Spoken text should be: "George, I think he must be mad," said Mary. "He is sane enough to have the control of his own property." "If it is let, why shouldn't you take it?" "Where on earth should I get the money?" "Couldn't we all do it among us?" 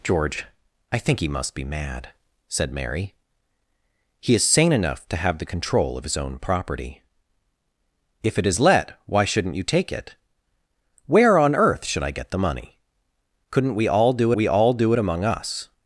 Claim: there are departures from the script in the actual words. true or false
true